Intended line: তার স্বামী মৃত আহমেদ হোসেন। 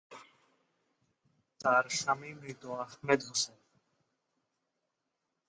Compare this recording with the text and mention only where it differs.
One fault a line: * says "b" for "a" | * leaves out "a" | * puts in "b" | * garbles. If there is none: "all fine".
all fine